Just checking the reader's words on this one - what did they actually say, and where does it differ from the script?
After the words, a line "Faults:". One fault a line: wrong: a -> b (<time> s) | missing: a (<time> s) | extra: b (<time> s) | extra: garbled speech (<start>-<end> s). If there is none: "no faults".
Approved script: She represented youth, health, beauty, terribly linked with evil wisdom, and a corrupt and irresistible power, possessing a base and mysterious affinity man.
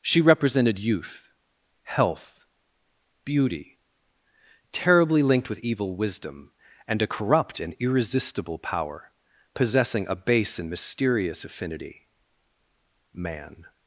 She represented youth, health, beauty, terribly linked with evil wisdom, and a corrupt and irresistible power, possessing a base and mysterious affinity man.
Faults:
no faults